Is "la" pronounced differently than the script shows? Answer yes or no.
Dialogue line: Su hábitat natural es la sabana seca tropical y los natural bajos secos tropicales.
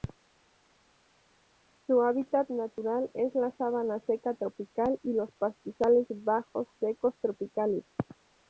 no